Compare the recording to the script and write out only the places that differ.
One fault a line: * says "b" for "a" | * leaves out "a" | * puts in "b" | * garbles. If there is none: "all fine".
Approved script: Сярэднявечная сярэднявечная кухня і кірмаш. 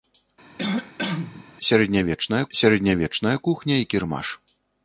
all fine